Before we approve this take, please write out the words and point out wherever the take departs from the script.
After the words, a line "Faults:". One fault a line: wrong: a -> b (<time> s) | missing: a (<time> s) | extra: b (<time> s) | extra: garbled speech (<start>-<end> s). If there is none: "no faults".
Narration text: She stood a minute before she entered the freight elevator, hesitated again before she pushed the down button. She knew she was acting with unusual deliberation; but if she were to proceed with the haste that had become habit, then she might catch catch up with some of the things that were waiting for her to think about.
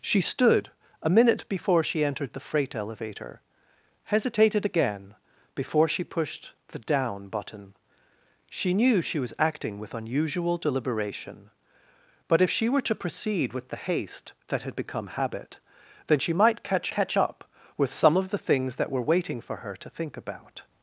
She stood a minute before she entered the freight elevator, hesitated again before she pushed the down button. She knew she was acting with unusual deliberation; but if she were to proceed with the haste that had become habit, then she might catch catch up with some of the things that were waiting for her to think about.
Faults:
no faults